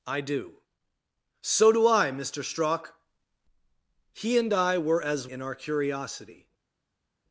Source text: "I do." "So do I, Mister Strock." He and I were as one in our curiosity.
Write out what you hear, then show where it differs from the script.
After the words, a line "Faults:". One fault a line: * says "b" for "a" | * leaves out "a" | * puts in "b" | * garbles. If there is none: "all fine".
"I do." "So do I, Mister Strock." He and I were as in our curiosity.
Faults:
* leaves out "one"